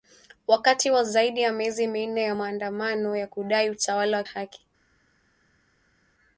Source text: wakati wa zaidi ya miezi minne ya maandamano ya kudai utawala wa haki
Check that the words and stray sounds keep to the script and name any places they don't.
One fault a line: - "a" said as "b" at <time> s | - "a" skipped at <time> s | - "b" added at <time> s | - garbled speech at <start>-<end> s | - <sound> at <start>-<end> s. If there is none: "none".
none